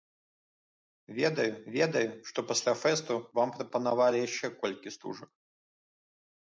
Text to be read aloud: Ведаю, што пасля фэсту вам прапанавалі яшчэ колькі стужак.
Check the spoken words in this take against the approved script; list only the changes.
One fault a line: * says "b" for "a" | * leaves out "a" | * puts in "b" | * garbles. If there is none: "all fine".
* puts in "ведаю"